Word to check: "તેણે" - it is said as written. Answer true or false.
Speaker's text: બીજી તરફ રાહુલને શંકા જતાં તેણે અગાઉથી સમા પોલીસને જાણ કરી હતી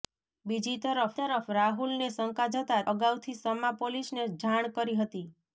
false